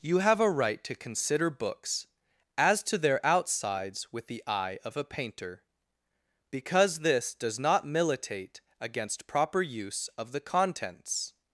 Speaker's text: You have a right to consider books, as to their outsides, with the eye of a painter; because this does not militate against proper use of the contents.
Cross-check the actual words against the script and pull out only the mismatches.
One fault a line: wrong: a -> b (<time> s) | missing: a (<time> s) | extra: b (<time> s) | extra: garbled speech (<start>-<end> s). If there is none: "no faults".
no faults